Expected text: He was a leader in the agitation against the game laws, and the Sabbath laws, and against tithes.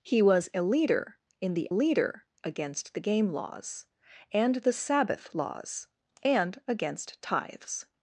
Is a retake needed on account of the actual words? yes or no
yes